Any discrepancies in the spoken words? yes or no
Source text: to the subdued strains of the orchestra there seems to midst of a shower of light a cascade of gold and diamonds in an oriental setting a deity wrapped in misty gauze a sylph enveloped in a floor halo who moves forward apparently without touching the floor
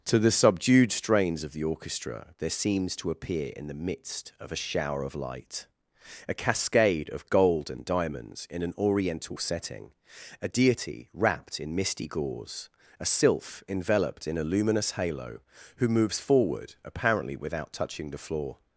yes